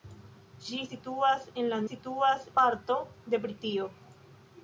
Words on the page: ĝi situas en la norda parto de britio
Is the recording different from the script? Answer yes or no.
yes